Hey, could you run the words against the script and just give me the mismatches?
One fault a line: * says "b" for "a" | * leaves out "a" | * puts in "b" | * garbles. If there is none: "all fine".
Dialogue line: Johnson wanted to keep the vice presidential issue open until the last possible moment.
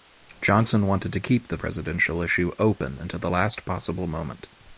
* leaves out "vice"